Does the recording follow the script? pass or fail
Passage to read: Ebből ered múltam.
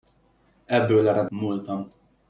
pass